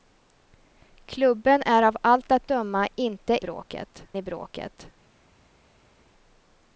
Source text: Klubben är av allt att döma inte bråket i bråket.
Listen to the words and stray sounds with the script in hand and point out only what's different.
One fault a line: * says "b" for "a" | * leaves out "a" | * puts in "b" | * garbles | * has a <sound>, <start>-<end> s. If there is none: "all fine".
all fine